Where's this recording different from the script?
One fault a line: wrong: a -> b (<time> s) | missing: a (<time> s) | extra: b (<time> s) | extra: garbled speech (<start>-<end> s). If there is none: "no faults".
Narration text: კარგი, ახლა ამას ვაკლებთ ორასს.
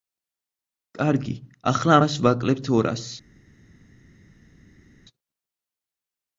no faults